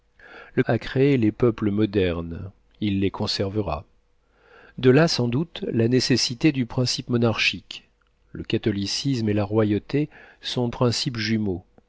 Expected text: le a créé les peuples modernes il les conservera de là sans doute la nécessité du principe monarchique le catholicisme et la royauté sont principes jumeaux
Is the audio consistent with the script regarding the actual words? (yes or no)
yes